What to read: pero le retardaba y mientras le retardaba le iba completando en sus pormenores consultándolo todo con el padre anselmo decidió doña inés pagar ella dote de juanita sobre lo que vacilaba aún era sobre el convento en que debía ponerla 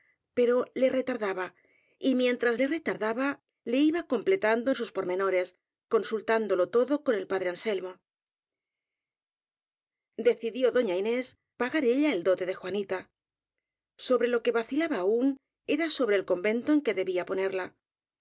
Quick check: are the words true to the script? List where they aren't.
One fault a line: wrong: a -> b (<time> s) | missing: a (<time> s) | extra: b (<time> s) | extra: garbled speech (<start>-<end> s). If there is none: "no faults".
extra: el (12.1 s)